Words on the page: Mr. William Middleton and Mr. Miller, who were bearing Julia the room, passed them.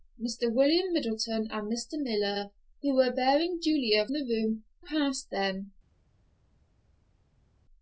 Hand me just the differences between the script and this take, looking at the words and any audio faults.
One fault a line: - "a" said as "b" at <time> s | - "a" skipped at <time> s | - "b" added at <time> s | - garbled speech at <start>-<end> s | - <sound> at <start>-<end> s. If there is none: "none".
none